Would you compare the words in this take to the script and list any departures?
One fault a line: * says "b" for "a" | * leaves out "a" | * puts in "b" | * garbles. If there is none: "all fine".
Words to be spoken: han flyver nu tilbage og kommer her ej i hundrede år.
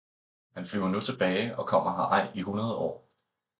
all fine